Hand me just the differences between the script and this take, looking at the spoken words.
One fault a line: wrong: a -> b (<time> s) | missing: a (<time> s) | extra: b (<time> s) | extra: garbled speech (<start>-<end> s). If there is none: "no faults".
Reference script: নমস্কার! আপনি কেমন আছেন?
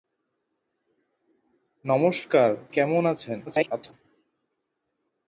missing: আপনি (2.5 s)
extra: garbled speech (3.5-3.9 s)